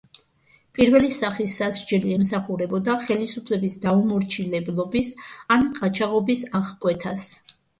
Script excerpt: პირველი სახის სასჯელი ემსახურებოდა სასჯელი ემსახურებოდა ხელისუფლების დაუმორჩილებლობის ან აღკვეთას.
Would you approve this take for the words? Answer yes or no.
no